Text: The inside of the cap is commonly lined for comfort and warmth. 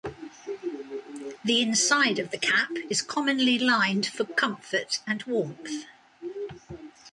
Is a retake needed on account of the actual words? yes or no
no